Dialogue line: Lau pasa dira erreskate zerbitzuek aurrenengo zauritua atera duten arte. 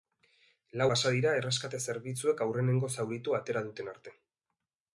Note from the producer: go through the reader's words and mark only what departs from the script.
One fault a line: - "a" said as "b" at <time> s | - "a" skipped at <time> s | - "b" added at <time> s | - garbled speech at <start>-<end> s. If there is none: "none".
none